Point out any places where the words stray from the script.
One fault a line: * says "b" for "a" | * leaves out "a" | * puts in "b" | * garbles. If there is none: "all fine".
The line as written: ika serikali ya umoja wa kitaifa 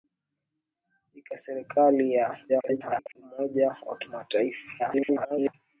* garbles
* garbles